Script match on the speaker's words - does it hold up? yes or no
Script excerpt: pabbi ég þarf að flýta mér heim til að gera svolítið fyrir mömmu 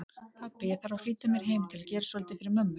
yes